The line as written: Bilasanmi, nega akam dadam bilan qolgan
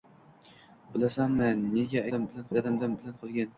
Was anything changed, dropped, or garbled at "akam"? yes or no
yes